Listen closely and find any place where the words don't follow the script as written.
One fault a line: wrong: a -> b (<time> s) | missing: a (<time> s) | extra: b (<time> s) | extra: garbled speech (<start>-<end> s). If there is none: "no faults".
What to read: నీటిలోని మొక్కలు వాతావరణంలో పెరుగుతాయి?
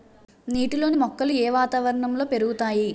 extra: ఏ (1.3 s)